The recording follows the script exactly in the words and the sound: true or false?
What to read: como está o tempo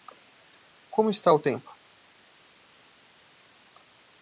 true